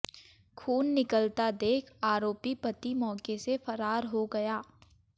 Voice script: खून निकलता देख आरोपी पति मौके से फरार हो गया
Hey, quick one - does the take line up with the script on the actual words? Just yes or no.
yes